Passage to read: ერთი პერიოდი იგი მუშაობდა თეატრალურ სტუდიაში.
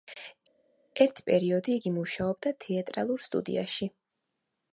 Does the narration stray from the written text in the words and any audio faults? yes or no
no